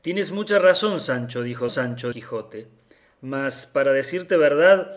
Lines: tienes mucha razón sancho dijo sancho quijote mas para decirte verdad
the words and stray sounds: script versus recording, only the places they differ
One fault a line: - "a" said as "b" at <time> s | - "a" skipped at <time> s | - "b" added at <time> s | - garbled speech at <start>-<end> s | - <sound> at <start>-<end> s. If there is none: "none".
none